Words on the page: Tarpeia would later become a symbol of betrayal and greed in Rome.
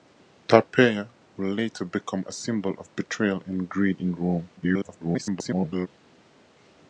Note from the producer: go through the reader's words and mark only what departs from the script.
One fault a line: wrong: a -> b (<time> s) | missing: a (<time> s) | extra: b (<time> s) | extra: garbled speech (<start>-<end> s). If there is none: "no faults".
extra: garbled speech (4.6-5.9 s)